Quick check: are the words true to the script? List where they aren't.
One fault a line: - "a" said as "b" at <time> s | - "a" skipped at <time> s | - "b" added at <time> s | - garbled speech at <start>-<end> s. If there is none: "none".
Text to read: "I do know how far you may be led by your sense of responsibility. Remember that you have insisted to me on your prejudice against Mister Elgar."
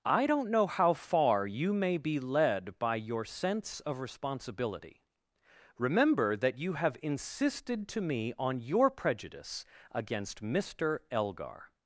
- "do" said as "don't" at 0.2 s